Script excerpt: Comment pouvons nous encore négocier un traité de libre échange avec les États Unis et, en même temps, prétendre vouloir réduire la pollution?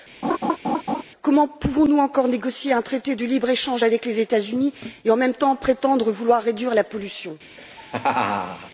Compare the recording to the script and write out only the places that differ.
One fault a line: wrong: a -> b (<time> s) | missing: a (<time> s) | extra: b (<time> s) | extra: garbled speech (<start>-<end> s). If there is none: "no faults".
no faults